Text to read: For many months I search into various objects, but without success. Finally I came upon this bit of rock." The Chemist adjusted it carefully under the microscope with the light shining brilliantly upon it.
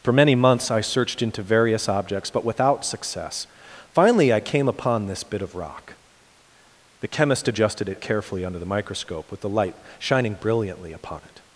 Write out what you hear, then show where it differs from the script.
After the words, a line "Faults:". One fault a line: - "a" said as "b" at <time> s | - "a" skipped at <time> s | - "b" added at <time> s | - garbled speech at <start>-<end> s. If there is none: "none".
For many months I searched into various objects, but without success. Finally I came upon this bit of rock." The Chemist adjusted it carefully under the microscope with the light shining brilliantly upon it.
Faults:
- "search" said as "searched" at 0.8 s